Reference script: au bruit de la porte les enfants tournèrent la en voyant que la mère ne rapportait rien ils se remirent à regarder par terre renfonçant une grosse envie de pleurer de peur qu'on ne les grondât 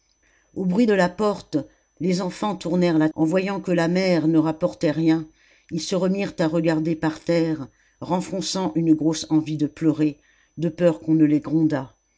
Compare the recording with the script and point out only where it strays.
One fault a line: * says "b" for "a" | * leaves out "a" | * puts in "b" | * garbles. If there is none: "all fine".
all fine